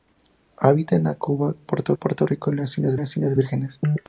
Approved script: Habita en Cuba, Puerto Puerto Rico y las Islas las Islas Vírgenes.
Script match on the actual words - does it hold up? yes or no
yes